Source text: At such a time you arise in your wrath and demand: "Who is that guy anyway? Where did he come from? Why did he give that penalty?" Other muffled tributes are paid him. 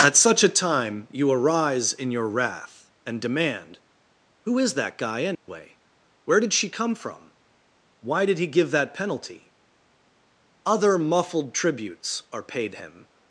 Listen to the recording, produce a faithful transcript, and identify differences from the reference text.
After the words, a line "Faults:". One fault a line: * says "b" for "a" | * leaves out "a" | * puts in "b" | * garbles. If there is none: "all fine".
At such a time you arise in your wrath and demand: "Who is that guy anyway? Where did she come from? Why did he give that penalty?" Other muffled tributes are paid him.
Faults:
* says "she" for "he"